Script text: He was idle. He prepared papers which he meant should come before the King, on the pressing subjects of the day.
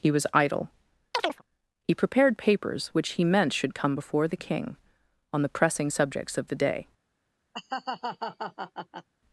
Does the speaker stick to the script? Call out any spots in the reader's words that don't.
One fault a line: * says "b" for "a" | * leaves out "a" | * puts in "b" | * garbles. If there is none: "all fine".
all fine